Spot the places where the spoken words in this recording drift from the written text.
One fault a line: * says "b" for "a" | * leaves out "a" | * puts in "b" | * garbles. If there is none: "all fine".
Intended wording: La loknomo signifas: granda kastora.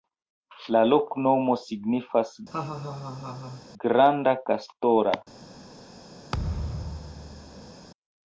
all fine